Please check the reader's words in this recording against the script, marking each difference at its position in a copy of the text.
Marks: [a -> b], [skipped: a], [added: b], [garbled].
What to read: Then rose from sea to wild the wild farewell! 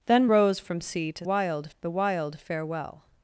Then rose from sea to wild the wild farewell!